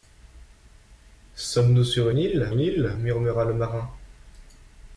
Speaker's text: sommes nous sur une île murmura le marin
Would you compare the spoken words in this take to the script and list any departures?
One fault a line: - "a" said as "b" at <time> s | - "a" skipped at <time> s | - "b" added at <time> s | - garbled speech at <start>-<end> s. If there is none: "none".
- "une île" added at 2.5 s